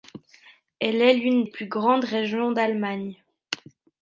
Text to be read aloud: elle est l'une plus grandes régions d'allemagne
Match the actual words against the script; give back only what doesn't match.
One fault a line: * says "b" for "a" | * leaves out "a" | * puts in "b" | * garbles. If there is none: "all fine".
all fine